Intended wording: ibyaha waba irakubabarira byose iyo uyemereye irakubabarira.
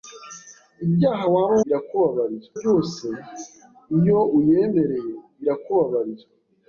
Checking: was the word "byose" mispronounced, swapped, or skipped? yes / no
no